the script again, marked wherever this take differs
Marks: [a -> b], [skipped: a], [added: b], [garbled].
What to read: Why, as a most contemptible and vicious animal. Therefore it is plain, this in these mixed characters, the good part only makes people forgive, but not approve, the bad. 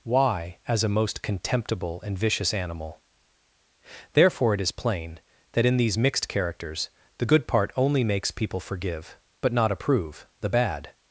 Why, as a most contemptible and vicious animal. Therefore it is plain, [this -> that] in these mixed characters, the good part only makes people forgive, but not approve, the bad.